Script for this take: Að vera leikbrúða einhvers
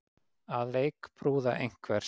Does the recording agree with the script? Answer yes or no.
no